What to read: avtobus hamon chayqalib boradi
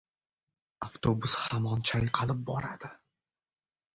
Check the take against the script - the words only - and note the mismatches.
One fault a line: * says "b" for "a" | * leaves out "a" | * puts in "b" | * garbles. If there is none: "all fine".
all fine